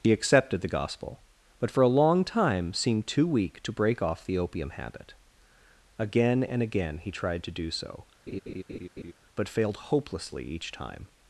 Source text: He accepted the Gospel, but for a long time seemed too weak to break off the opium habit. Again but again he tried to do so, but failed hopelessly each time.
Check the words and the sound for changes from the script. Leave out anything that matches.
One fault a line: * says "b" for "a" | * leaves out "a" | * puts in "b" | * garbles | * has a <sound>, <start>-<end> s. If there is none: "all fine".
* says "and" for "but"
* has a laugh, 8.3-9.1 s